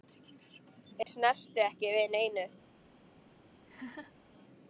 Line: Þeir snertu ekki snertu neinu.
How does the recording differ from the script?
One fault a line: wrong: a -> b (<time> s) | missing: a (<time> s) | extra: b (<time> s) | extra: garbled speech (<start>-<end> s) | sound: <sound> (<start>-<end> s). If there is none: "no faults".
sound: dropout (1.0-1.1 s)
wrong: snertu -> við (2.0 s)
sound: laugh (3.7-4.1 s)